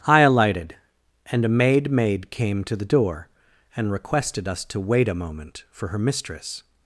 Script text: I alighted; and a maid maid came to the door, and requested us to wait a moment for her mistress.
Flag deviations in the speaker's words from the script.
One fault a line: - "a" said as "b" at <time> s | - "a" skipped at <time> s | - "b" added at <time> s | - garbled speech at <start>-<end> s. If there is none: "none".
none